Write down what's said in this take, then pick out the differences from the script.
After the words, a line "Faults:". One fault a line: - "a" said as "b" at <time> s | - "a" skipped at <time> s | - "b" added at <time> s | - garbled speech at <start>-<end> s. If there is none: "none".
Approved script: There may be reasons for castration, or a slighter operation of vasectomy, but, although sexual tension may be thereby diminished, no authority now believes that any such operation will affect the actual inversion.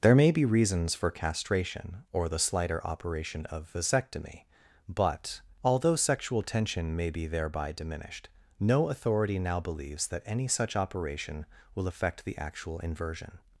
There may be reasons for castration, or the slighter operation of vasectomy, but, although sexual tension may be thereby diminished, no authority now believes that any such operation will affect the actual inversion.
Faults:
- "a" said as "the" at 2.3 s